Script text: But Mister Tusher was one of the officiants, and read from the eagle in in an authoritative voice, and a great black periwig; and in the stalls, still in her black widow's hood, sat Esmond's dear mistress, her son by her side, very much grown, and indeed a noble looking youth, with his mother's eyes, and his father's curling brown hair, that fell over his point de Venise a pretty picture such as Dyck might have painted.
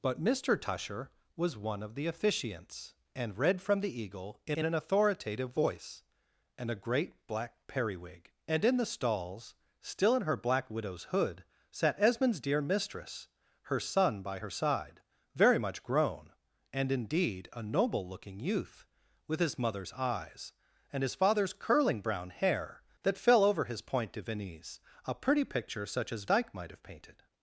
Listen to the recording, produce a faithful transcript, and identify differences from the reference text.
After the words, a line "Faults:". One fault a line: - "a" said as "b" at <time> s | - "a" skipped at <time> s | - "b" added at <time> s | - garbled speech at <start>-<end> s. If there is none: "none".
But Mister Tusher was one of the officiants, and read from the eagle in in an authoritative voice, and a great black periwig; and in the stalls, still in her black widow's hood, sat Esmond's dear mistress, her son by her side, very much grown, and indeed a noble looking youth, with his mother's eyes, and his father's curling brown hair, that fell over his point de Venise a pretty picture such as Dyck might have painted.
Faults:
none